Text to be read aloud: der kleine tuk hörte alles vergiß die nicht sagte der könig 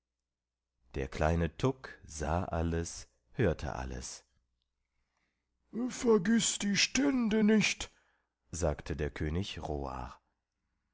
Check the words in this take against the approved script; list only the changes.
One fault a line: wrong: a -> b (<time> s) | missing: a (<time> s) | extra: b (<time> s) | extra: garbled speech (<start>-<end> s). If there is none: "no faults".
extra: sah alles (2.1 s)
extra: stände (6.8 s)